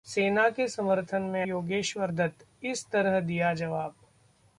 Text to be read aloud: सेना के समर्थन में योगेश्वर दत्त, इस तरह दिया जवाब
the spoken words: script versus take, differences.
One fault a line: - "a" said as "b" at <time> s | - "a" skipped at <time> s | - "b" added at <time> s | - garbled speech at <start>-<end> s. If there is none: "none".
none